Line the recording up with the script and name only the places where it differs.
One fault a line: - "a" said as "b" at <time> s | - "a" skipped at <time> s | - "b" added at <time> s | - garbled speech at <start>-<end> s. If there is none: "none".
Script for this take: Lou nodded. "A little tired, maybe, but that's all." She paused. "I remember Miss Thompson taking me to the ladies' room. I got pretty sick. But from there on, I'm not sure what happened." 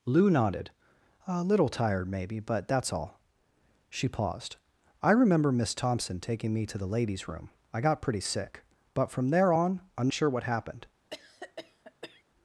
- "not" skipped at 10.1 s